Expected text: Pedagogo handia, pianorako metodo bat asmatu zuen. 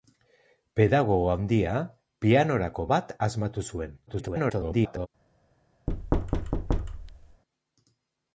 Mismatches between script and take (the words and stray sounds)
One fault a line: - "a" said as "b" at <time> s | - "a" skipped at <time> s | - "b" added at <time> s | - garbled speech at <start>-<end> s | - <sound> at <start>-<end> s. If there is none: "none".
- "metodo" skipped at 2.9 s
- garbled speech at 4.1-5.1 s
- thud at 5.9-7.4 s